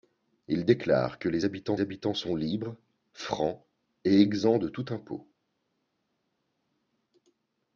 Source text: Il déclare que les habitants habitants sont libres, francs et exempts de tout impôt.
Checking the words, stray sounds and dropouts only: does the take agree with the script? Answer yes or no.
yes